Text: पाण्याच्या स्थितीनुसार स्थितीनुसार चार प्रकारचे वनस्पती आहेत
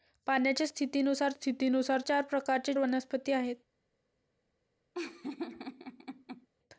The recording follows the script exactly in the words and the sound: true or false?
false